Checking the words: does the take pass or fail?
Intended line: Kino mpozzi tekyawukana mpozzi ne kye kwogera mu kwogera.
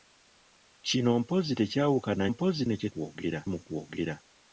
pass